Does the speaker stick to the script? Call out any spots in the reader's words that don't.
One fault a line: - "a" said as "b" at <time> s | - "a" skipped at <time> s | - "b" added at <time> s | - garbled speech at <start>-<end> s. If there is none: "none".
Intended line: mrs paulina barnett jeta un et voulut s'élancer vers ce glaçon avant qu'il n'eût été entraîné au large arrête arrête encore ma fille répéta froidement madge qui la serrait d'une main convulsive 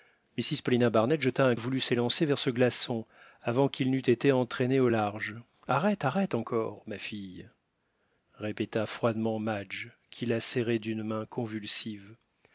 none